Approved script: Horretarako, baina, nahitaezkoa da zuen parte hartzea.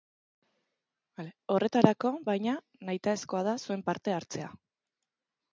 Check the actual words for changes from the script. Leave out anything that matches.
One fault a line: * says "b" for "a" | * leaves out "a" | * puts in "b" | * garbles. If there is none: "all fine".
all fine